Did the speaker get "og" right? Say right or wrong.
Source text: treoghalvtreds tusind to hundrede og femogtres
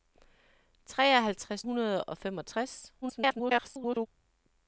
right